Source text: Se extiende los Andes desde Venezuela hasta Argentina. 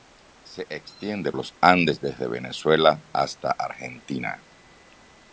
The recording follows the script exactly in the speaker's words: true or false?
true